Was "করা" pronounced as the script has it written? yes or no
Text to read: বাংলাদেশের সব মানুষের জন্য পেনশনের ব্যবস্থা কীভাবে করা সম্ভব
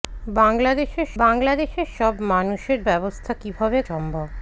no